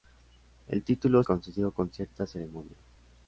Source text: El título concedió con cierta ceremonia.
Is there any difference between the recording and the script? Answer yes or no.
no